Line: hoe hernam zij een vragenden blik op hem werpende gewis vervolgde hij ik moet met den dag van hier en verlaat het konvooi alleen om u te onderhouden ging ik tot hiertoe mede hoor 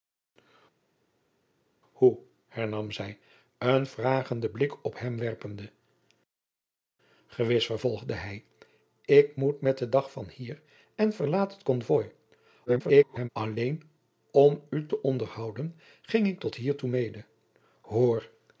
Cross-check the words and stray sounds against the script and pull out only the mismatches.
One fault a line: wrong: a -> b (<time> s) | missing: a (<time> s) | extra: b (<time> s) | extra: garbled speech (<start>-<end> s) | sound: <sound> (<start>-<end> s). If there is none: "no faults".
extra: garbled speech (12.7-13.3 s)